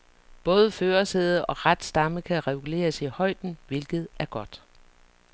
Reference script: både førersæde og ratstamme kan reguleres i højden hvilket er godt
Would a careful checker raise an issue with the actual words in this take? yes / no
no